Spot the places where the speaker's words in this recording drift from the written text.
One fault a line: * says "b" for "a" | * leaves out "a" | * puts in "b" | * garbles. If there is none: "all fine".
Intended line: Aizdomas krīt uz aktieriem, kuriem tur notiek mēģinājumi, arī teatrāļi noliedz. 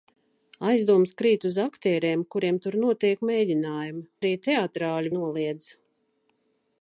all fine